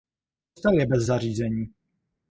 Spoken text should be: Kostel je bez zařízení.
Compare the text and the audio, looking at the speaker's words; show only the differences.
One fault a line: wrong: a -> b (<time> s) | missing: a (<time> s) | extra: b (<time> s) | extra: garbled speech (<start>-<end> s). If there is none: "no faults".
no faults